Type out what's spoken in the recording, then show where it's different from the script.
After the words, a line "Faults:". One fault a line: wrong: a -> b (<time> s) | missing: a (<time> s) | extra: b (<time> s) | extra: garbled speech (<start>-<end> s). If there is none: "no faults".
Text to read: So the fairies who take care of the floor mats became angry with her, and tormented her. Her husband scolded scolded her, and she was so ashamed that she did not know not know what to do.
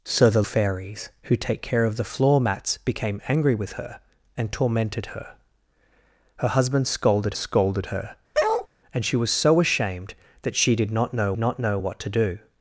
So the fairies who take care of the floor mats became angry with her, and tormented her. Her husband scolded scolded her, and she was so ashamed that she did not know not know what to do.
Faults:
no faults